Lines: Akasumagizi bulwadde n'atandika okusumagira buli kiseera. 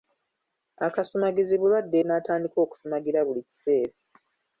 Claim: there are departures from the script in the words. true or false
false